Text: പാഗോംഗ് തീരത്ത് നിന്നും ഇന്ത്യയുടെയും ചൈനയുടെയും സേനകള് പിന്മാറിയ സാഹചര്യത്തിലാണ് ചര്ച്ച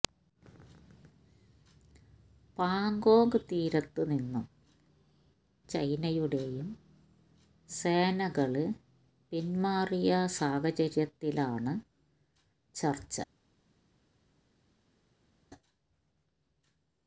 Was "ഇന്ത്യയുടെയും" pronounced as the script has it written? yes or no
no